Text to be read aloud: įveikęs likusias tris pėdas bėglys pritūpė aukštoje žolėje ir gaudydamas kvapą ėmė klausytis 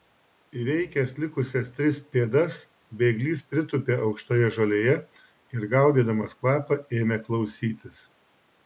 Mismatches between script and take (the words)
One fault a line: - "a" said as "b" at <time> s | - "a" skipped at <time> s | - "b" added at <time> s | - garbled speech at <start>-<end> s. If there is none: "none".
none